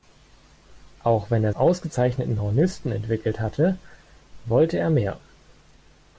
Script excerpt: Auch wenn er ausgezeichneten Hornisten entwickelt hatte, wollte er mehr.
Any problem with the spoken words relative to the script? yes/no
no